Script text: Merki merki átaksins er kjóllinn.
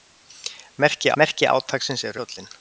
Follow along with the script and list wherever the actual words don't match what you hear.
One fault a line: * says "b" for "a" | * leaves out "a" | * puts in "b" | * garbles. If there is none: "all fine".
all fine